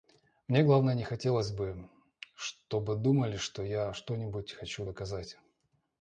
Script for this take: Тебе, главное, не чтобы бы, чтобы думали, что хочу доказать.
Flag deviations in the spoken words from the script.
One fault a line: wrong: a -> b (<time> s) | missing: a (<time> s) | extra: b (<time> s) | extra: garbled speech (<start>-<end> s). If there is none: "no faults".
wrong: Тебе -> Мне (0.5 s)
wrong: чтобы -> хотелось (1.0 s)
extra: я что нибудь (3.6 s)